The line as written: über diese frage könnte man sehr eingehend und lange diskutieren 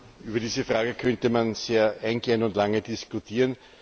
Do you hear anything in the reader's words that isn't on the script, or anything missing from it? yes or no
no